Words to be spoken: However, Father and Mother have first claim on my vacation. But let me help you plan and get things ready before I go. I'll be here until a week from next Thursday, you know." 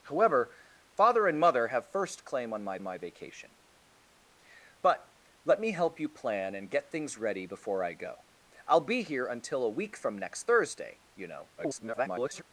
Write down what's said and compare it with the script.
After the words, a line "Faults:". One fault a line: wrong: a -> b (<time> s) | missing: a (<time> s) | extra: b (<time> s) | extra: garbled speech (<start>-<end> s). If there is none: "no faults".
However, Father and Mother have first claim on my my vacation. But let me help you plan and get things ready before I go. I'll be here until a week from next Thursday, you know." [garbled]
Faults:
extra: my (2.8 s)
extra: garbled speech (11.6-12.4 s)